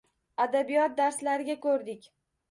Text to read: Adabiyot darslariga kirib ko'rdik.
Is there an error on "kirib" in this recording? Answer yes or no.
yes